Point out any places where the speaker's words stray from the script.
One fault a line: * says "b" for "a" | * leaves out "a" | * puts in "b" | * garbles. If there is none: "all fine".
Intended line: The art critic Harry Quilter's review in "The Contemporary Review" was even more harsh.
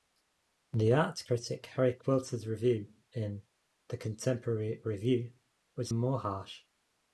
* leaves out "even"